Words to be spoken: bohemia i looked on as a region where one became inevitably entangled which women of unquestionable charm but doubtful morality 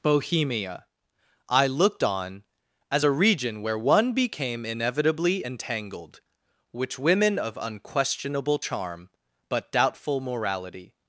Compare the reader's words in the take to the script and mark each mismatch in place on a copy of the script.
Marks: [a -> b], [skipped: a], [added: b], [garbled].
bohemia i looked on as a region where one became inevitably entangled which women of unquestionable charm but doubtful morality